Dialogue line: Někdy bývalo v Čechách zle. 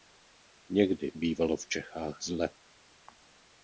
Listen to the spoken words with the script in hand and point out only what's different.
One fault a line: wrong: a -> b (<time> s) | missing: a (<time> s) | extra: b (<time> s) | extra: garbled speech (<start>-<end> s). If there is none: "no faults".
no faults